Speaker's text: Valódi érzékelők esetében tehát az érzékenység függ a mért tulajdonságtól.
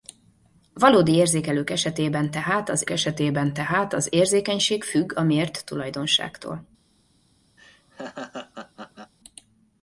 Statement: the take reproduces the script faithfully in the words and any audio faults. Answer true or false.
false